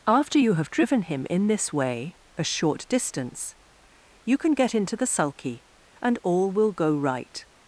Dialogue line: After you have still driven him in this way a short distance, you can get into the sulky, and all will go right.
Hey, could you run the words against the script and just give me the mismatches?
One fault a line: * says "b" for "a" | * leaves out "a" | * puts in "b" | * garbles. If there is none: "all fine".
* leaves out "still"